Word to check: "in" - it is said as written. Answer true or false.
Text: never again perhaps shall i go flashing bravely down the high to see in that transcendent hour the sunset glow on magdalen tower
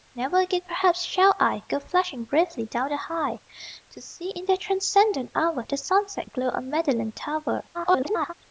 true